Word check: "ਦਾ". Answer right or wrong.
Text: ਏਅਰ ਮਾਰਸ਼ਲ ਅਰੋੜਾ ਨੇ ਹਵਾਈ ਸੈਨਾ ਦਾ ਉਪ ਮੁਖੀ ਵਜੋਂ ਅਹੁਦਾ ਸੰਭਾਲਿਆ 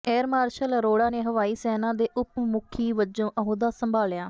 wrong